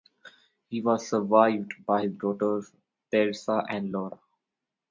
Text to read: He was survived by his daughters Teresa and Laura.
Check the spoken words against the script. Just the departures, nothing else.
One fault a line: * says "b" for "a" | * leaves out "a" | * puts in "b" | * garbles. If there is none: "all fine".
all fine